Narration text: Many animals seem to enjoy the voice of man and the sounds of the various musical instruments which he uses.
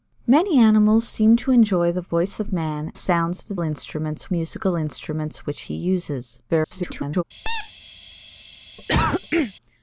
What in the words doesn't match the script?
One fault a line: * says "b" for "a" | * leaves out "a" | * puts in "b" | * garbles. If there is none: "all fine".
* leaves out "and"
* says "instruments" for "various"
* garbles